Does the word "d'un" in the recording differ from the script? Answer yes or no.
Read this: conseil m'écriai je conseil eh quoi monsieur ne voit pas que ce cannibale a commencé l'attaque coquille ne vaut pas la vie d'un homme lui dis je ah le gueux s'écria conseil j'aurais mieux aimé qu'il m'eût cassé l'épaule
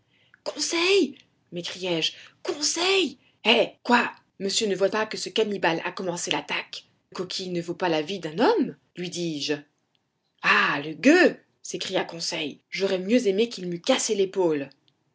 no